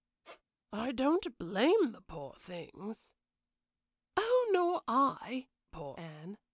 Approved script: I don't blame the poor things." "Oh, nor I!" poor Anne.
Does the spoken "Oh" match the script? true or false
true